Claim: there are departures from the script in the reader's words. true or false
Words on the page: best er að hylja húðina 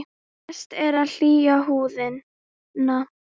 false